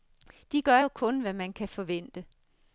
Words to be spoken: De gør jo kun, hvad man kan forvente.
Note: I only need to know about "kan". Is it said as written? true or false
true